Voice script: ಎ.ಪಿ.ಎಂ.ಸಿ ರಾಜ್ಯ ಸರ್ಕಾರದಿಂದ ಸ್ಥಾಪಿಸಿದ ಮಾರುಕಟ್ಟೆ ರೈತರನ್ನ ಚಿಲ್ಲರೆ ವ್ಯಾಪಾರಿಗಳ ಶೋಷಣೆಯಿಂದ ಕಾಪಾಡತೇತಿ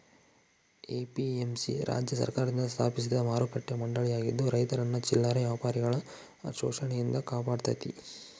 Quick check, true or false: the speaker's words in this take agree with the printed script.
false